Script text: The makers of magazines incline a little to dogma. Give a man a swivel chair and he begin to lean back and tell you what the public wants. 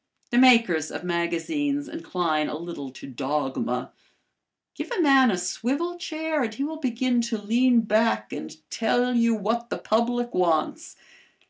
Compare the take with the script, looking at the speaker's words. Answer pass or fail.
fail